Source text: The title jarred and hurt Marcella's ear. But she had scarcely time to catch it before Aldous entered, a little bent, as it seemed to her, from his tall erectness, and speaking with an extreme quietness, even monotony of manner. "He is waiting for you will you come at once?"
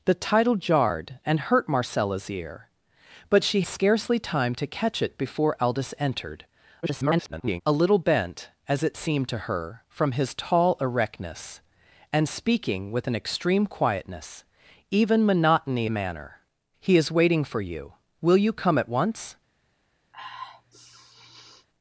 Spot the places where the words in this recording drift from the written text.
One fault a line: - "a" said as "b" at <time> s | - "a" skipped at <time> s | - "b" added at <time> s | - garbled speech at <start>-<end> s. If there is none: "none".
- "had" skipped at 3.6 s
- garbled speech at 6.8-7.6 s
- "of" skipped at 15.9 s